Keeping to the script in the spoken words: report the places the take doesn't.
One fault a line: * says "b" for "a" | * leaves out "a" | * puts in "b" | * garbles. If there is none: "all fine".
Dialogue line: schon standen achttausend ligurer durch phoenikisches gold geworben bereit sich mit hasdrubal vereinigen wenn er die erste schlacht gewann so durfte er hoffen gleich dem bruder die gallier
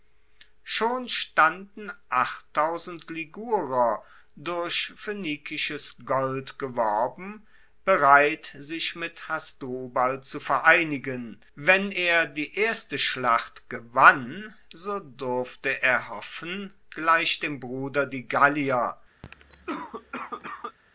* puts in "zu"